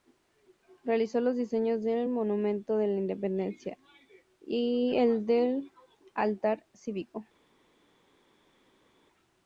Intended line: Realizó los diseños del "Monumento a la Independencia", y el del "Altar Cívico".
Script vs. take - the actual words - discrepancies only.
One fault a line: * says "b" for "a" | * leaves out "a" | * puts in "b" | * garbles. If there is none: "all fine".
all fine